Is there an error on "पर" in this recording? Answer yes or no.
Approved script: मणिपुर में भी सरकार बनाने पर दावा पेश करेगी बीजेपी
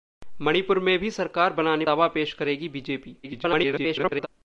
yes